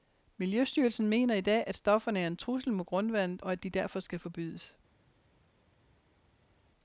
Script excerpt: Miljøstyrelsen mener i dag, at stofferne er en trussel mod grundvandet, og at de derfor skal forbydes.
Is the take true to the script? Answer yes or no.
yes